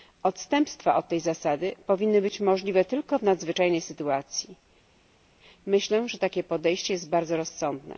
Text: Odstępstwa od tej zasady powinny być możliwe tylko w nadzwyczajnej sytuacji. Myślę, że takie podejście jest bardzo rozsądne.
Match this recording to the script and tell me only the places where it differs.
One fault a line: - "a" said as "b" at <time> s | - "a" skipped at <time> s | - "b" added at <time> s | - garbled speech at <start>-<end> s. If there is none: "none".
none